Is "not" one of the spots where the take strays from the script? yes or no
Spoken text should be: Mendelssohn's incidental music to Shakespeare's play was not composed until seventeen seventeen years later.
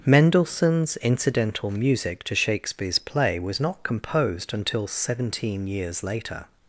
no